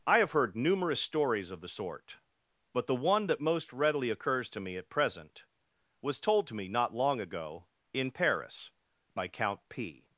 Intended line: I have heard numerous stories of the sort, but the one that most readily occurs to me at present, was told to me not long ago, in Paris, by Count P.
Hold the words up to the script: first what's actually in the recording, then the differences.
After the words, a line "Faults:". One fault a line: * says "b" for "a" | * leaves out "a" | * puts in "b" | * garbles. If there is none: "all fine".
I have heard numerous stories of the sort, but the one that most readily occurs to me at present, was told to me not long ago, in Paris, by Count P.
Faults:
all fine